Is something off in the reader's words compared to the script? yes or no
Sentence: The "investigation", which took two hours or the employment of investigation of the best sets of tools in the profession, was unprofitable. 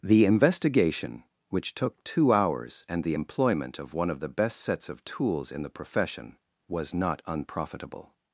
yes